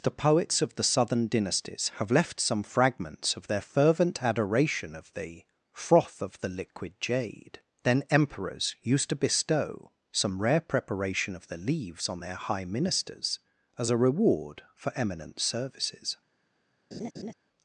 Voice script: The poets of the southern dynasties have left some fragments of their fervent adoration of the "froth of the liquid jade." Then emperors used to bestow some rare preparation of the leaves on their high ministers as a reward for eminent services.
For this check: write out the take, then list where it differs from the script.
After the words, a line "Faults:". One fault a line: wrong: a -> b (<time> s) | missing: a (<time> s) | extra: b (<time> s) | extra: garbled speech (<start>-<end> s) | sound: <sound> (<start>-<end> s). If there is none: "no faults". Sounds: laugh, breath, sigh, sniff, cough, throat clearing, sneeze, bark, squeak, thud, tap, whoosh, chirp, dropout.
The poets of the southern dynasties have left some fragments of their fervent adoration of the "froth of the liquid jade." Then emperors used to bestow some rare preparation of the leaves on their high ministers as a reward for eminent services.
Faults:
sound: laugh (16.9-17.3 s)